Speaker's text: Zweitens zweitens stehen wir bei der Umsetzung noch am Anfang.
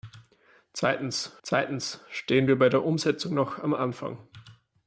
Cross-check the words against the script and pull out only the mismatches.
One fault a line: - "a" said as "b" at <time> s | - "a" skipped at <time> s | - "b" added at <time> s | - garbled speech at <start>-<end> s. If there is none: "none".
none